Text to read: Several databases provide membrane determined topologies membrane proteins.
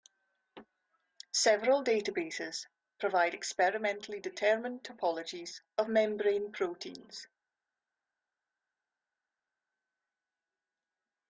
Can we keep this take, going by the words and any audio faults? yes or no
no